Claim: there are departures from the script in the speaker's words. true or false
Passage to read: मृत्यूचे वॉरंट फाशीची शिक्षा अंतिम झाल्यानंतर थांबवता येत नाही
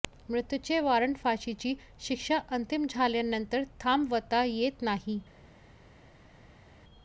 false